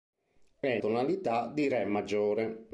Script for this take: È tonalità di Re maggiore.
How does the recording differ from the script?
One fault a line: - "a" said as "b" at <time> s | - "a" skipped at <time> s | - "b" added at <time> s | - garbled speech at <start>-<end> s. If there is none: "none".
none